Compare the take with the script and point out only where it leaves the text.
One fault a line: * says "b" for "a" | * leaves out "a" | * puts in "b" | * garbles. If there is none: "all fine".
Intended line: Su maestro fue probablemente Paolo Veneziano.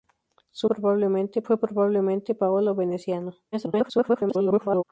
* says "probablemente" for "maestro"
* garbles